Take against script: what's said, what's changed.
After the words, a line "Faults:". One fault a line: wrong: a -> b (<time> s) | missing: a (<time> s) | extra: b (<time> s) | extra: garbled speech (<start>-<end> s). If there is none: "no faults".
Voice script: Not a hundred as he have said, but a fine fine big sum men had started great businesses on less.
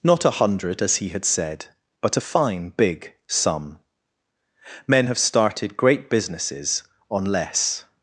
Not a hundred as he had said, but a fine big sum men have started great businesses on less.
Faults:
wrong: have -> had (1.1 s)
missing: fine (2.7 s)
wrong: had -> have (5.0 s)